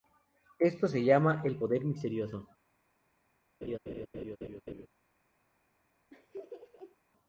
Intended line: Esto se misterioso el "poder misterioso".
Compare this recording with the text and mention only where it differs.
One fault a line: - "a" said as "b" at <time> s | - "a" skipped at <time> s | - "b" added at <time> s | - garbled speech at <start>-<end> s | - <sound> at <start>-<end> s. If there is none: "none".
- "misterioso" said as "llama" at 1.0 s
- laugh at 3.6-4.9 s
- laugh at 6.1-7.0 s